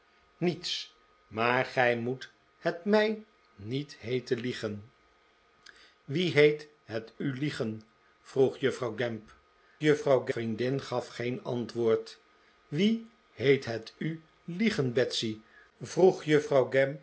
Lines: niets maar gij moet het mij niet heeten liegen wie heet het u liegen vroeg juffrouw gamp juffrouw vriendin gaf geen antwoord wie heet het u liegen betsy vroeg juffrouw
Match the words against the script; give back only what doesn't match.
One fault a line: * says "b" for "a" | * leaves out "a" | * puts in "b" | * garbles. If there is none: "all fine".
all fine